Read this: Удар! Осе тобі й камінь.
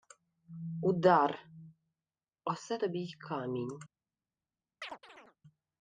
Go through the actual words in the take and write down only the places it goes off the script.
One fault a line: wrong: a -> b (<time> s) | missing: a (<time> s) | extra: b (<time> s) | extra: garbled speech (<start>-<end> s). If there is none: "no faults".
no faults